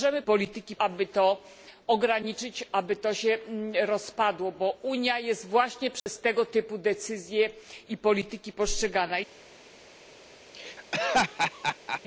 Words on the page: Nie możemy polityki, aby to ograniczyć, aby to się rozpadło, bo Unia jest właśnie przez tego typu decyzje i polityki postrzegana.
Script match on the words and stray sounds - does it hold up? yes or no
no